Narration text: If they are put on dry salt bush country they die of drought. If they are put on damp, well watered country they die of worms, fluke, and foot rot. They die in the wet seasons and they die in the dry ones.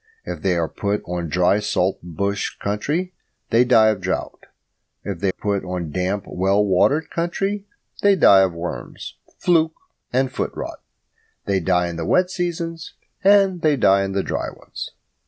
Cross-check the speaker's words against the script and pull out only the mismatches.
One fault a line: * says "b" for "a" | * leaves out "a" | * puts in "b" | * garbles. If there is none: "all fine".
* leaves out "are"